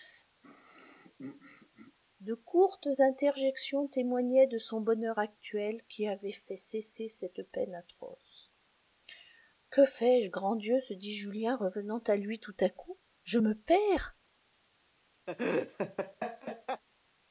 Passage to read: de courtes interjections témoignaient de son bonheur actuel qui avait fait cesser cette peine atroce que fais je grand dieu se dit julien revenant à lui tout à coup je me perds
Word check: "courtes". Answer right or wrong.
right